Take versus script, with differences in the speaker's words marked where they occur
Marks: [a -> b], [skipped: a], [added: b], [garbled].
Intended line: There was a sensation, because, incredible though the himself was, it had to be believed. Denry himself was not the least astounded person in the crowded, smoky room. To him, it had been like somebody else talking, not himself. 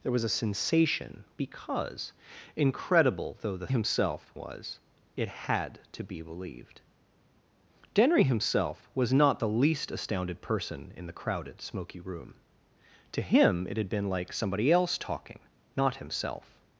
There was a sensation, because, incredible though the himself was, it had to be believed. Denry himself was not the least astounded person in the crowded, smoky room. To him, it had been like somebody else talking, not himself.